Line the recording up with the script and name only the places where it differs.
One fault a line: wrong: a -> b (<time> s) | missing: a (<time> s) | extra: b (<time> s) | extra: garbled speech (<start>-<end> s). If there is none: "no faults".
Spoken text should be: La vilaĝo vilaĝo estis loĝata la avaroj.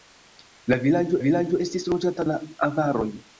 no faults